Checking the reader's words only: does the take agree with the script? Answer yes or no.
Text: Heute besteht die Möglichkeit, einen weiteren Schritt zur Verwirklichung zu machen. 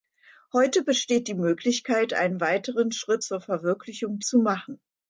yes